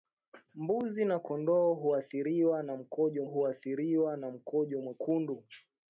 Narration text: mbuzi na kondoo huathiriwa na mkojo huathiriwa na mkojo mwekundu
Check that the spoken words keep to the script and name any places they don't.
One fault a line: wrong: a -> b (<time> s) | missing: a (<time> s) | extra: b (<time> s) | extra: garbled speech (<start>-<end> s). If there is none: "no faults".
no faults